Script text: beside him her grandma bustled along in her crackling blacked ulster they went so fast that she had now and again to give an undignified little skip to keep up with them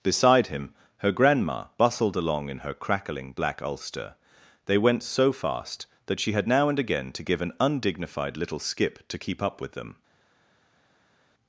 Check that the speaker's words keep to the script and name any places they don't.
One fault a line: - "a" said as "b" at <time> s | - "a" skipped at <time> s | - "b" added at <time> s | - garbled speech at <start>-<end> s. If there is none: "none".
- "blacked" said as "black" at 3.3 s